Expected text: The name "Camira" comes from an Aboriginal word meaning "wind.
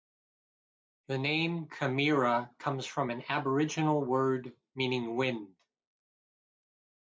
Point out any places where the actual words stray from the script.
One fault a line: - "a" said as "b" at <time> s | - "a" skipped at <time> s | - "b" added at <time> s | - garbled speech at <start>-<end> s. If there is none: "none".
none